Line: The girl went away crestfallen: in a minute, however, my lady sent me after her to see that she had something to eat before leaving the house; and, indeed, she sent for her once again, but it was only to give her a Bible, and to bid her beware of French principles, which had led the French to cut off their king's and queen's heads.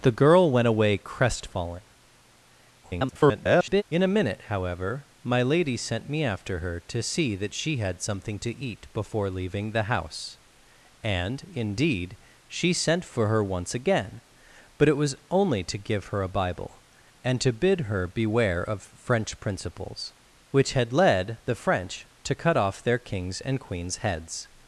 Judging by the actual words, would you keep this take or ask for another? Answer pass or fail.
fail